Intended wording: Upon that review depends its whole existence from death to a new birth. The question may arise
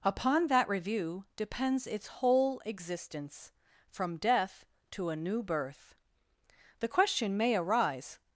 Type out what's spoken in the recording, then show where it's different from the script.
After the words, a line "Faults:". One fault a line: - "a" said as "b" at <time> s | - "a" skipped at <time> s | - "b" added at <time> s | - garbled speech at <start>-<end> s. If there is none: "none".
Upon that review depends its whole existence from death to a new birth. The question may arise
Faults:
none